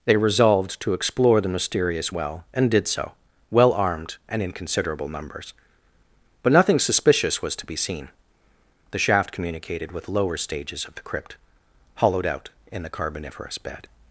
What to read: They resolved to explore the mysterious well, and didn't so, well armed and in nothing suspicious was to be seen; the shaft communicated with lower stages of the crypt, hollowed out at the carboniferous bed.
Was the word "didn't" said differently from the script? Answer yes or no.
yes